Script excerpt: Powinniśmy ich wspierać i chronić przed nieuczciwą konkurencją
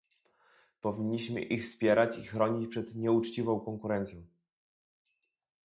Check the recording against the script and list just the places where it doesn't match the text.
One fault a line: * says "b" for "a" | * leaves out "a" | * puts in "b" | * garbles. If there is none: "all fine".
all fine